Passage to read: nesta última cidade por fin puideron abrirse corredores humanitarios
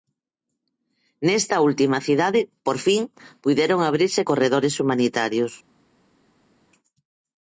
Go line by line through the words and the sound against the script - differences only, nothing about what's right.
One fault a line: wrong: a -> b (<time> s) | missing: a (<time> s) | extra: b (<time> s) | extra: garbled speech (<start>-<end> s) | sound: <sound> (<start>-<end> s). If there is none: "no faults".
no faults